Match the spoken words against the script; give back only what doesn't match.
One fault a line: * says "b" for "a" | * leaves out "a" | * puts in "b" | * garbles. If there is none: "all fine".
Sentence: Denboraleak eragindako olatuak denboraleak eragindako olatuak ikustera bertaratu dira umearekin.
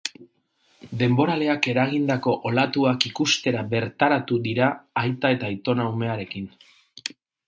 * says "ikustera bertaratu dira aita eta aitona" for "denboraleak eragindako olatuak ikustera bertaratu dira"